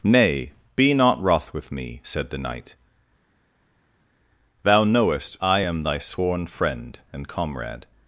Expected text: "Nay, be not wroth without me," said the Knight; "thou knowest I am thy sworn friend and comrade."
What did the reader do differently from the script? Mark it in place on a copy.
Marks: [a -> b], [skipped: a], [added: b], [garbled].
"Nay, be not wroth [without -> with] me," said the Knight; "thou knowest I am thy sworn friend and comrade."